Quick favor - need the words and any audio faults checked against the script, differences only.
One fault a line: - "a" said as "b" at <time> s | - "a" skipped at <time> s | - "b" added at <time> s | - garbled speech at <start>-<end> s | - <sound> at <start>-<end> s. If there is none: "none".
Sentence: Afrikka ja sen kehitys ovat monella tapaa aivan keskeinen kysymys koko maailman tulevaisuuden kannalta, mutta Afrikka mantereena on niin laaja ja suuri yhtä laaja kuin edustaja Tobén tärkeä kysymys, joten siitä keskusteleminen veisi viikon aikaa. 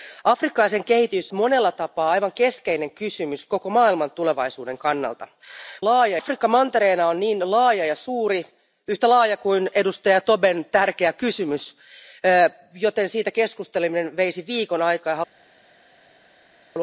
- "ovat" skipped at 1.3 s
- "mutta" said as "laaja" at 5.8 s